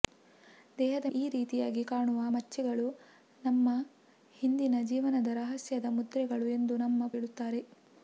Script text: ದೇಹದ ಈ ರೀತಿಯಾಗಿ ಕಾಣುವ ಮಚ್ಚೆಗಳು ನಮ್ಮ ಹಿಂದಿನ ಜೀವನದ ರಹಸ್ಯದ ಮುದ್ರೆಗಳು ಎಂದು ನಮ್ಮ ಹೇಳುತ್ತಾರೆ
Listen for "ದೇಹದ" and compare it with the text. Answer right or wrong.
right